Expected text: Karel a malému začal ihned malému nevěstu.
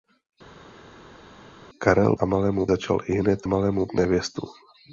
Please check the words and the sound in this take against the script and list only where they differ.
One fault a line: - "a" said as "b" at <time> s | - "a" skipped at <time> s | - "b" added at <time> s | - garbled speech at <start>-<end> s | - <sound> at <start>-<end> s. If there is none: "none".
none